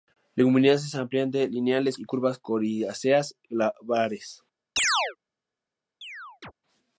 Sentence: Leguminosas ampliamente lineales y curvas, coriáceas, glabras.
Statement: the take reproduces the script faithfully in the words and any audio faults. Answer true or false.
false